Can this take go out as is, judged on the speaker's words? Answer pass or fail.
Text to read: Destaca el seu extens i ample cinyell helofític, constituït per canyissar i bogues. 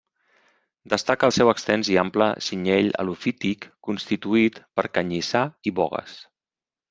pass